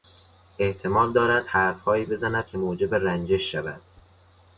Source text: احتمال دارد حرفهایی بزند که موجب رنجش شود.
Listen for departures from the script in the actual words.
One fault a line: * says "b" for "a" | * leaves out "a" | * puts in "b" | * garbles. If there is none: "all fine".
all fine